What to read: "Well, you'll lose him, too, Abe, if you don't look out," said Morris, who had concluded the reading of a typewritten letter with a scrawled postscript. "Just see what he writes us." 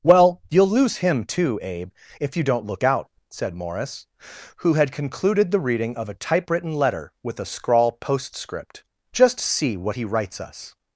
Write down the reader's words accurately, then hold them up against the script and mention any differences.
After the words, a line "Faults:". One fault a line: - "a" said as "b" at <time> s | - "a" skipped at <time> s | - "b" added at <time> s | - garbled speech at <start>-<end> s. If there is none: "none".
"Well, you'll lose him, too, Abe, if you don't look out," said Morris, who had concluded the reading of a typewritten letter with a scrawl postscript. "Just see what he writes us."
Faults:
- "scrawled" said as "scrawl" at 7.5 s